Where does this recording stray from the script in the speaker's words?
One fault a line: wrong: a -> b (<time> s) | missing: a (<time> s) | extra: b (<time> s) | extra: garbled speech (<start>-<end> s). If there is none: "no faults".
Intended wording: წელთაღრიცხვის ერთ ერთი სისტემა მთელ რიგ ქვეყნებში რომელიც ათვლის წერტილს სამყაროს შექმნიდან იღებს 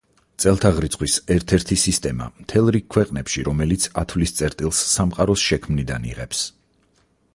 no faults